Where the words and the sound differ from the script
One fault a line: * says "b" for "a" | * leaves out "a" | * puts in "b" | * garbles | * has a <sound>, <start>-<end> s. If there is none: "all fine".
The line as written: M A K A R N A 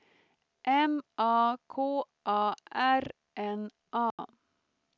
* has a dropout, 4.1-4.2 s